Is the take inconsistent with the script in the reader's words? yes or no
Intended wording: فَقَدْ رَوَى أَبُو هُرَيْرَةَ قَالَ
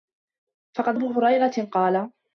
yes